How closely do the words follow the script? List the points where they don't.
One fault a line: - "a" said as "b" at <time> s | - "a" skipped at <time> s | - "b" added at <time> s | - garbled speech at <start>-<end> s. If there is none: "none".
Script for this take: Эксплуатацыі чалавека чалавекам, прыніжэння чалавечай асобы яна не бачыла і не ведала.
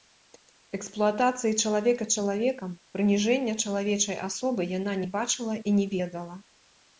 none